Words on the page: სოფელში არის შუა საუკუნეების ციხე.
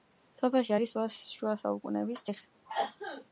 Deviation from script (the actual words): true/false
false